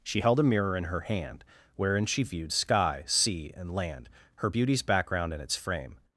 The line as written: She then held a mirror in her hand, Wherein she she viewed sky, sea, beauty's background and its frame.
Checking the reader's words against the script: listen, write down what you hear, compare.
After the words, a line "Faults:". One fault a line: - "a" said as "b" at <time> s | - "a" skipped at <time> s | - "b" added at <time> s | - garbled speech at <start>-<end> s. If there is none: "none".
She held a mirror in her hand, Wherein she viewed sky, sea, and land, Her beauty's background and its frame.
Faults:
- "then" skipped at 0.2 s
- "she" skipped at 2.2 s
- "and land Her" added at 3.6 s